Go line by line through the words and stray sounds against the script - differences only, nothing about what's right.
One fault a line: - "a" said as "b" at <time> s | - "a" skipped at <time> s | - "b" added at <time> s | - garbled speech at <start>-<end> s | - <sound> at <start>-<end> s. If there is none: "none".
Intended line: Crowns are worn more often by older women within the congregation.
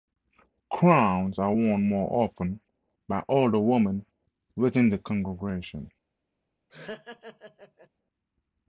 - laugh at 6.7-7.9 s